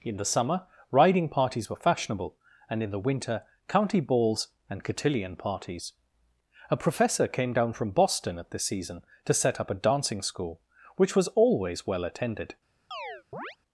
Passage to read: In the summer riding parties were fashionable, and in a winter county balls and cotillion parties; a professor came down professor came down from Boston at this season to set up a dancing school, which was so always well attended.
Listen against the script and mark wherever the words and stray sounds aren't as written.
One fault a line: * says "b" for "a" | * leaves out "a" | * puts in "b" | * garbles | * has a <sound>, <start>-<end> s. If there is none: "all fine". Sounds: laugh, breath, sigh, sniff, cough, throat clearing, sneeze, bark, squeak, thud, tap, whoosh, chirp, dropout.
* says "the" for "a"
* leaves out "professor came down"
* leaves out "so"
* has a chirp, 12.9-13.6 s